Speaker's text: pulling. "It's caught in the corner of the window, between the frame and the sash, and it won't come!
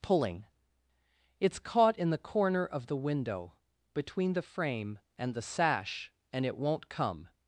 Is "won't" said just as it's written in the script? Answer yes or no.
yes